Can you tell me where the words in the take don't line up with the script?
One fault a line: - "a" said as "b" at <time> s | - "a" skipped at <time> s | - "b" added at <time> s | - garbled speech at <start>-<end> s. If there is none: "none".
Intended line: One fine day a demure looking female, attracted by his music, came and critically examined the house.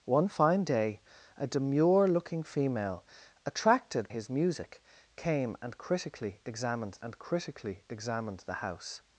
- "by" skipped at 4.1 s
- "and critically examined" added at 7.0 s